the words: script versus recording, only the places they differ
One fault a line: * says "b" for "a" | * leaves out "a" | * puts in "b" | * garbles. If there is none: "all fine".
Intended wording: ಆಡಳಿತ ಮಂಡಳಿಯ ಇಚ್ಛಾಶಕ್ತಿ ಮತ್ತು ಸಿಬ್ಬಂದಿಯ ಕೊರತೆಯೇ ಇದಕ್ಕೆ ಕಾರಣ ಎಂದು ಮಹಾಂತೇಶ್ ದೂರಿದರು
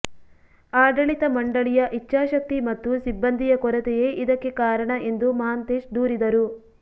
all fine